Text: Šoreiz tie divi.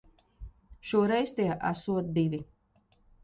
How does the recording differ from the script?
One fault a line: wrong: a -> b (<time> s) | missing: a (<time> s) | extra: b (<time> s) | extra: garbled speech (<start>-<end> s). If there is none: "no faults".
extra: esot (1.7 s)